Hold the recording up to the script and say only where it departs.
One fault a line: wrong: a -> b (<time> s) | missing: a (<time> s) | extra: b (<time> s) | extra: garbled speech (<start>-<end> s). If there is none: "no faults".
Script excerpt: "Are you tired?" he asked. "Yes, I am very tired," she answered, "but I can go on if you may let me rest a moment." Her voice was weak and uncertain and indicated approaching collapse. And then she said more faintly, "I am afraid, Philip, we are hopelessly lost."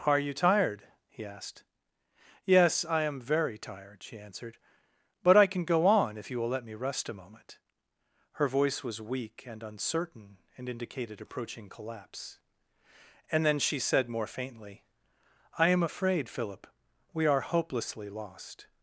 wrong: may -> will (6.4 s)